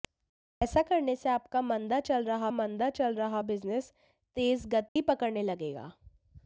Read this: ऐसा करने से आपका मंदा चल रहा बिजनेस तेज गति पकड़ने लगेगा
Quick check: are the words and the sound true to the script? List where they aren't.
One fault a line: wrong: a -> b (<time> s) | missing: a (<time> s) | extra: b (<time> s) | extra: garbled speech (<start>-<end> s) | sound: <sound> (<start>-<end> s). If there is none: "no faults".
extra: मंदा चल रहा (2.5 s)
sound: dropout (4.9-5.0 s)